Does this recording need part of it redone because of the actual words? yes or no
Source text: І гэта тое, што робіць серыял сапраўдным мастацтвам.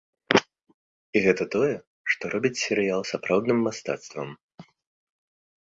no